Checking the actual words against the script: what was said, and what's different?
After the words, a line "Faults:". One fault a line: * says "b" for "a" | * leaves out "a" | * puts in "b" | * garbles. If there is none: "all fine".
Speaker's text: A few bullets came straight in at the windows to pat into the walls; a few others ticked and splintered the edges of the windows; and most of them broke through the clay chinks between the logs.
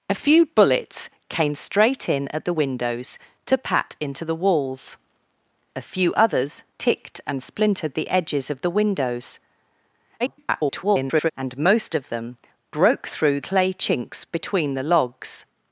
A few bullets came straight in at the windows to pat into the walls; a few others ticked and splintered the edges of the windows; [garbled] and most of them broke through clay chinks between the logs.
Faults:
* garbles
* leaves out "the"